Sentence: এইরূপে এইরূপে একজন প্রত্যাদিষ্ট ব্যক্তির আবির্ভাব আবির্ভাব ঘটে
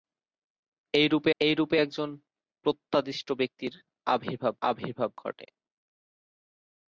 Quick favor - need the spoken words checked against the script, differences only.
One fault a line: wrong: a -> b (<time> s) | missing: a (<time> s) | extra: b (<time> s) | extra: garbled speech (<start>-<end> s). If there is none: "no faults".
no faults